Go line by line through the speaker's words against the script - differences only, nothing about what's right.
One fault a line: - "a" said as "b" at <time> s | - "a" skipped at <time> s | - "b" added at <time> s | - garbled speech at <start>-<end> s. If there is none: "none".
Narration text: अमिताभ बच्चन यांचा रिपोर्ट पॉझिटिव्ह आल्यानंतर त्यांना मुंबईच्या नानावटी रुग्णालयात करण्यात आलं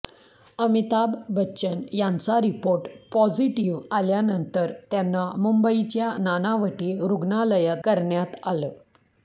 none